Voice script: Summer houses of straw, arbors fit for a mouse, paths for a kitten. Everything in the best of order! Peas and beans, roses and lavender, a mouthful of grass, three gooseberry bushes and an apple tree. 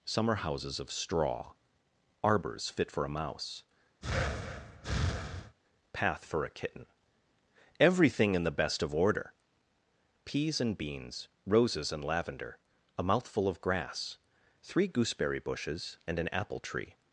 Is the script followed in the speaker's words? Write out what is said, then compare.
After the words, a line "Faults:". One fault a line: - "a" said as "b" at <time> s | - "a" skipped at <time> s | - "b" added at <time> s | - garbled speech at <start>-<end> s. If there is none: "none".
Summer houses of straw, arbors fit for a mouse, path for a kitten. Everything in the best of order! Peas and beans, roses and lavender, a mouthful of grass, three gooseberry bushes and an apple tree.
Faults:
- "paths" said as "path" at 5.9 s